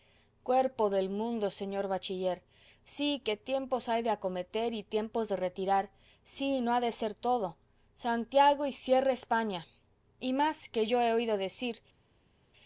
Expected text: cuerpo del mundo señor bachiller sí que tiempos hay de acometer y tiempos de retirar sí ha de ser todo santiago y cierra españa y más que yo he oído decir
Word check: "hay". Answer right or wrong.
right